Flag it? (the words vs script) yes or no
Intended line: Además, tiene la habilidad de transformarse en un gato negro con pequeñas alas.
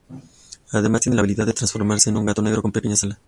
no